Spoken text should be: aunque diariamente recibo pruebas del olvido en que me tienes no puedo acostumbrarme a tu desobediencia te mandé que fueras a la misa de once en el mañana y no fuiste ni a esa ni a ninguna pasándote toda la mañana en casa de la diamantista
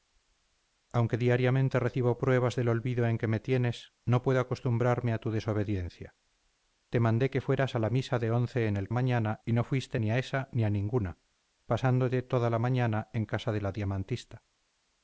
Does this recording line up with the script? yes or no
yes